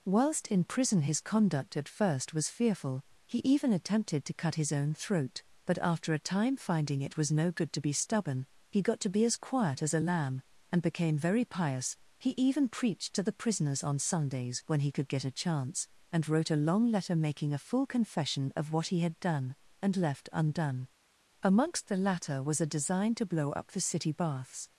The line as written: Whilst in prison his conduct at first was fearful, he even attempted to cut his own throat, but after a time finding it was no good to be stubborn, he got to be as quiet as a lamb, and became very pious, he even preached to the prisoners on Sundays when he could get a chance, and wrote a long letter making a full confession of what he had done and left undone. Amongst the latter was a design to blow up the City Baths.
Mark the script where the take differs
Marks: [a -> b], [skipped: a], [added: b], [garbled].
Whilst in prison his conduct at first was fearful, he even attempted to cut his own throat, but after a time finding it was no good to be stubborn, he got to be as quiet as a lamb, and became very pious, he even preached to the prisoners on Sundays when he could get a chance, and wrote a long letter making a full confession of what he had done and left undone. Amongst the latter was a design to blow up the City Baths.